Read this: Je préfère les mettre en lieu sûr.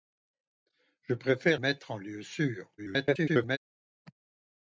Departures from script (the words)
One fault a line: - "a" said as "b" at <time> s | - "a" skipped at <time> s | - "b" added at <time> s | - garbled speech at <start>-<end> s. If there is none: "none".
- "les" skipped at 1.6 s
- garbled speech at 2.8-3.6 s